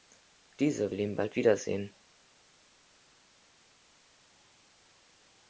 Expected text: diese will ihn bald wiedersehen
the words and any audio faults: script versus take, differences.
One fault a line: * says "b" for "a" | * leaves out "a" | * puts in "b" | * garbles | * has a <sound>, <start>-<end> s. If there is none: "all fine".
all fine